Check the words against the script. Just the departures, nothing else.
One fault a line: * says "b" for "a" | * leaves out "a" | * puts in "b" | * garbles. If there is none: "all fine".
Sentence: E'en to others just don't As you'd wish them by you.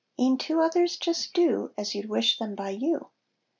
* says "do" for "don't"